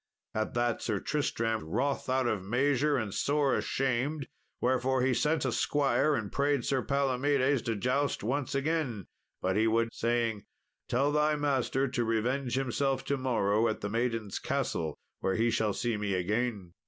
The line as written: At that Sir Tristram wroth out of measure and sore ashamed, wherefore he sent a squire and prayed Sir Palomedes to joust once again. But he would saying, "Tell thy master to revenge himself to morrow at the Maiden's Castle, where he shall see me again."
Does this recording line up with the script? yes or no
yes